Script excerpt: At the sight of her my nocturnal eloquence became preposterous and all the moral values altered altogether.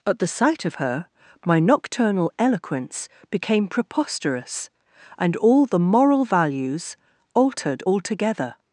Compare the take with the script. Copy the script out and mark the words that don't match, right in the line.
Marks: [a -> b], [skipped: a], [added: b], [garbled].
At the sight of her my nocturnal eloquence became preposterous and all the moral values altered altogether.